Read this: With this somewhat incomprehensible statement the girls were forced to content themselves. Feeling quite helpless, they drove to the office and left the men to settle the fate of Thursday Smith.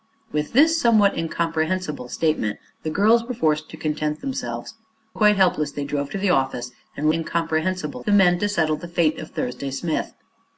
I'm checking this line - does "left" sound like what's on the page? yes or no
no